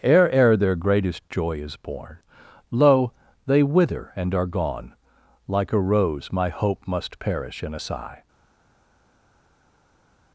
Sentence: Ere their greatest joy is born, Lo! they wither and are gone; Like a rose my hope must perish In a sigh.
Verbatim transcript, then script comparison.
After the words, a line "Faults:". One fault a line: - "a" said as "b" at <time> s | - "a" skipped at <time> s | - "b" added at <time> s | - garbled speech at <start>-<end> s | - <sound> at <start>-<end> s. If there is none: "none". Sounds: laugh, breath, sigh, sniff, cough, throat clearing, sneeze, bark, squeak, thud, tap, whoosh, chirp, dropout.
Ere ere their greatest joy is born, Lo! they wither and are gone; Like a rose my hope must perish In a sigh.
Faults:
- "ere" added at 0.3 s